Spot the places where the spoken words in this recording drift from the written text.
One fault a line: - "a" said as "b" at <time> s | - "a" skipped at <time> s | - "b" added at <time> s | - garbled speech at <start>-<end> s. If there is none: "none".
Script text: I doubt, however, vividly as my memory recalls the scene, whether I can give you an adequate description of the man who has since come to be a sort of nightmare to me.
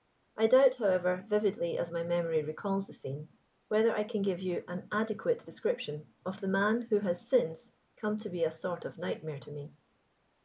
none